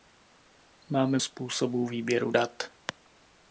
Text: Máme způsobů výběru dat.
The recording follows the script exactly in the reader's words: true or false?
true